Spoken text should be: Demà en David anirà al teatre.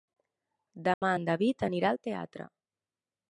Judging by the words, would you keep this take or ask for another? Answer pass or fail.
pass